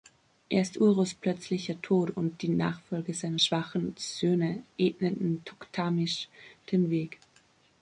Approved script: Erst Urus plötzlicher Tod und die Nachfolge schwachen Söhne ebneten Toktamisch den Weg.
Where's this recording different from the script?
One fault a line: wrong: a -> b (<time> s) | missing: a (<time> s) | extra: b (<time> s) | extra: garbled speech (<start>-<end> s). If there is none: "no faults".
extra: seiner (3.2 s)